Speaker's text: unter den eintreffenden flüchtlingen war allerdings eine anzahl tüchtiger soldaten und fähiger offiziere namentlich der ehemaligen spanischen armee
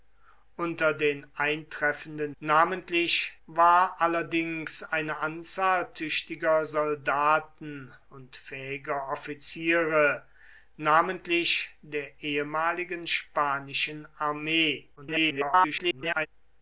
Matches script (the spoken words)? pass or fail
fail